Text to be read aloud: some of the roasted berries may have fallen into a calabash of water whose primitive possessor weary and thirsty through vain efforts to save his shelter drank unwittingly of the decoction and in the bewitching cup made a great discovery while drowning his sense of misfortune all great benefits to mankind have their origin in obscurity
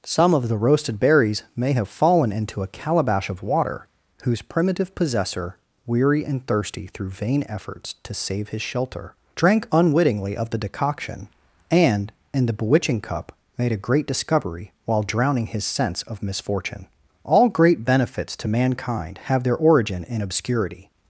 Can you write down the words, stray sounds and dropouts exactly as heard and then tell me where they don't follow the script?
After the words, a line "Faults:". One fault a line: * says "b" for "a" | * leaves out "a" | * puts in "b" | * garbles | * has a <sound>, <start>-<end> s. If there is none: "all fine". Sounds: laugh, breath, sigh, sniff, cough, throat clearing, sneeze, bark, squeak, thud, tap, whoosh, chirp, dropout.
some of the roasted berries may have fallen into a calabash of water whose primitive possessor weary and thirsty through vain efforts to save his shelter drank unwittingly of the decoction and in the bewitching cup made a great discovery while drowning his sense of misfortune all great benefits to mankind have their origin in obscurity
Faults:
all fine